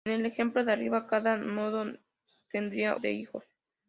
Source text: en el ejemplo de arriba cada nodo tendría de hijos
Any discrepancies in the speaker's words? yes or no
no